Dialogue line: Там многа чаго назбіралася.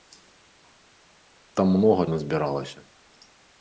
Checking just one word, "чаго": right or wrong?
wrong